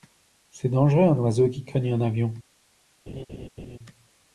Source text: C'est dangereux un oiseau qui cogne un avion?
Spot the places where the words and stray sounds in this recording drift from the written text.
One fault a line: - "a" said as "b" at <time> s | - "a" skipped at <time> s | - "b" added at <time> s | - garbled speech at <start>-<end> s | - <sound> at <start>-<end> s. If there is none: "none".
- laugh at 3.1-3.8 s